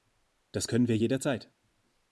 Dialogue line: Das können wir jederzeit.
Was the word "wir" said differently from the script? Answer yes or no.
no